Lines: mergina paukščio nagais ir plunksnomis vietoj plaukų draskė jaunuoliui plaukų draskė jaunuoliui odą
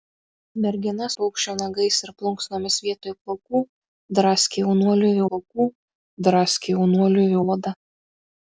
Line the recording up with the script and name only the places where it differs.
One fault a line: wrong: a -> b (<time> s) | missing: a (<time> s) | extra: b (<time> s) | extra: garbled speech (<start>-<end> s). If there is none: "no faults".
no faults